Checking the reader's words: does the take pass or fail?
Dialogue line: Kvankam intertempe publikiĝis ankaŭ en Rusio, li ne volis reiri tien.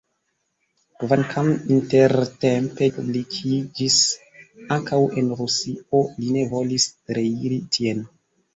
pass